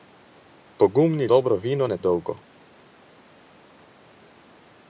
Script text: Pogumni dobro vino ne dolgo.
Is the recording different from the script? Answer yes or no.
no